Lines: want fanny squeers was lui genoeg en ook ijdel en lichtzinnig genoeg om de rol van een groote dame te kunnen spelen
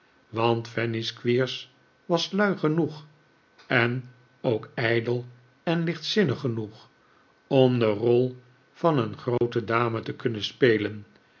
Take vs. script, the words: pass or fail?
pass